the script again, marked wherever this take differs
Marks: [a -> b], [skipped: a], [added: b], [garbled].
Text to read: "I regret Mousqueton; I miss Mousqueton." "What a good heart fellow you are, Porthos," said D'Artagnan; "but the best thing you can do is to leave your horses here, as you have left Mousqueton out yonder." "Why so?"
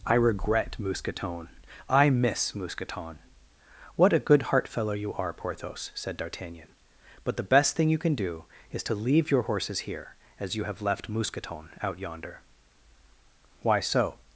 "I regret Mousqueton; I miss Mousqueton." "What a good heart fellow you are, Porthos," said D'Artagnan; "but the best thing you can do is to leave your horses here, as you have left Mousqueton out yonder." "Why so?"